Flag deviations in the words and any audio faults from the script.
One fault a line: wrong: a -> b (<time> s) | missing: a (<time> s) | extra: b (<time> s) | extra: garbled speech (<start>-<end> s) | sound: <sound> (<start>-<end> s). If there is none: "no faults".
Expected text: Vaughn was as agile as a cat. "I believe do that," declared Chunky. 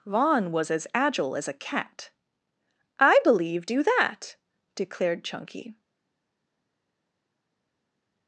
no faults